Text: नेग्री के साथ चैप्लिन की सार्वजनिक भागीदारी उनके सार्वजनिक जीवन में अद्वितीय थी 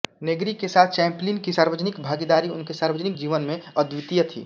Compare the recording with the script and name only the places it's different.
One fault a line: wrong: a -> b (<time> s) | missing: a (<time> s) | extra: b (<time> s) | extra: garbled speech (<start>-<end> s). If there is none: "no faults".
no faults